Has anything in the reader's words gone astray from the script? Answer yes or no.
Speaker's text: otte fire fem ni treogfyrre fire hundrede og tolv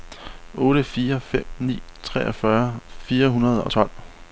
no